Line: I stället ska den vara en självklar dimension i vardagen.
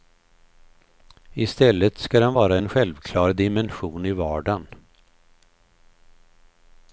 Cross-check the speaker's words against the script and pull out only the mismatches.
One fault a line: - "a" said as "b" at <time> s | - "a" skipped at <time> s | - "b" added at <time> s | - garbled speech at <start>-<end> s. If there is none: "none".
none